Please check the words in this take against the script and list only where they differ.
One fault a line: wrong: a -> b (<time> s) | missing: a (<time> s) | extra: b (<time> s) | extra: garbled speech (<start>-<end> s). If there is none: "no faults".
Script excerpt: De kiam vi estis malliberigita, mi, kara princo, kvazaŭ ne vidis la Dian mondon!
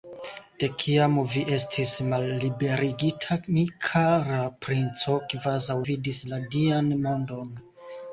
missing: ne (5.8 s)